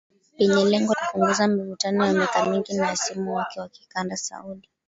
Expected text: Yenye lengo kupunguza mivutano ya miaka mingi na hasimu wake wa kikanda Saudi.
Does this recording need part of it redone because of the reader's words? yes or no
no